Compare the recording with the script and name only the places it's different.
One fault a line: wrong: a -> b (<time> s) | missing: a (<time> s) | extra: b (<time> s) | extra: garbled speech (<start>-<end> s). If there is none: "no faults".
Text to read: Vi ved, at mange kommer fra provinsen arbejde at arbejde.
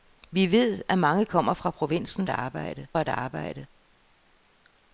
no faults